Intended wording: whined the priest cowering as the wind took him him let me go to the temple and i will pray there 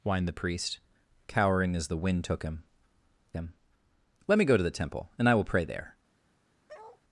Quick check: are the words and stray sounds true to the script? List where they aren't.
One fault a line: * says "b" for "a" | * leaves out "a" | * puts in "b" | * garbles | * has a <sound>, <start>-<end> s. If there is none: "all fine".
* has a bark, 6.7-7.0 s